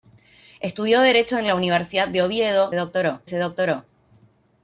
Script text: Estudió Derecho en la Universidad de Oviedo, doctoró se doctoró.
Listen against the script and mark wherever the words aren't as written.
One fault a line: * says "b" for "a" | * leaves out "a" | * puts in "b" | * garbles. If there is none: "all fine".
all fine